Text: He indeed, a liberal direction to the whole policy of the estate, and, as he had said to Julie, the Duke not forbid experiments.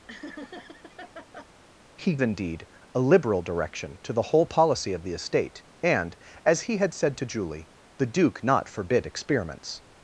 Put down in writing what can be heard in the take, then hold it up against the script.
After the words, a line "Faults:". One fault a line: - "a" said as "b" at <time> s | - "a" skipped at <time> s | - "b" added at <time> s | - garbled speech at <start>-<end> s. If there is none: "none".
He indeed, a liberal direction to the whole policy of the estate, and, as he had said to Julie, the Duke not forbid experiments.
Faults:
none